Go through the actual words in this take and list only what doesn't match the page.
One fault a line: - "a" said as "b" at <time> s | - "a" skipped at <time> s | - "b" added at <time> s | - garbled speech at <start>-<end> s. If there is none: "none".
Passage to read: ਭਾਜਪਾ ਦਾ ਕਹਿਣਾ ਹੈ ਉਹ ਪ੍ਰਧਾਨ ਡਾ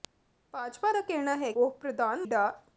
none